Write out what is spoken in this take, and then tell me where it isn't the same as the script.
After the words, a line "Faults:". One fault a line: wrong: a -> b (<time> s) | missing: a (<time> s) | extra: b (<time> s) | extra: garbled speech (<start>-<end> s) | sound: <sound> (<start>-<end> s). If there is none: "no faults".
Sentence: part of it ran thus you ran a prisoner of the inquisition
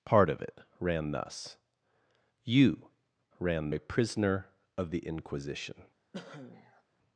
part of it ran thus you ran a prisoner of the inquisition
Faults:
sound: cough (6.1-6.8 s)